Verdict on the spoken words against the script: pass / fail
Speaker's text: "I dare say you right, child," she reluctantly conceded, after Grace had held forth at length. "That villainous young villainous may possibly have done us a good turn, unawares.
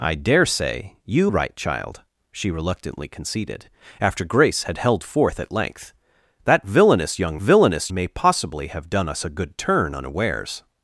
pass